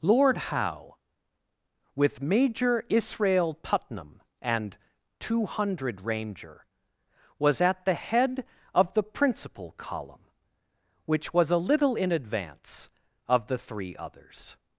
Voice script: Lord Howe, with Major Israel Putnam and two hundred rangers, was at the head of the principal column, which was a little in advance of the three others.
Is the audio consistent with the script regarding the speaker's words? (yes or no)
no